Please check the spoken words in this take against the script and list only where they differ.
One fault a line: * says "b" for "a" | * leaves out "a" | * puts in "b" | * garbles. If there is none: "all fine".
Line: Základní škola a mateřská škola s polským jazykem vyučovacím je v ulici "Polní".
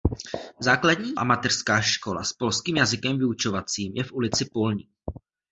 * leaves out "škola"